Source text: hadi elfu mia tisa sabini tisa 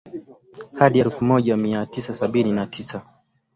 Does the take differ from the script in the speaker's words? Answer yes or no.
yes